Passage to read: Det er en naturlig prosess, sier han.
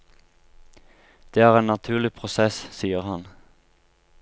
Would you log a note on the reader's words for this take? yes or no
no